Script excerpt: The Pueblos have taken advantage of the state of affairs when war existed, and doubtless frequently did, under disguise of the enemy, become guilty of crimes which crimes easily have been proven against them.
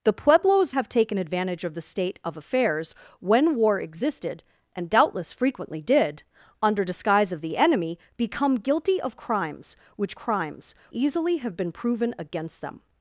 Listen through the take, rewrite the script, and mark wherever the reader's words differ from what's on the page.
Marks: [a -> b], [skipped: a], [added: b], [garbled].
The Pueblos have taken advantage of the state of affairs when war existed, and doubtless frequently did, under disguise of the enemy, become guilty of crimes which crimes easily have been proven against them.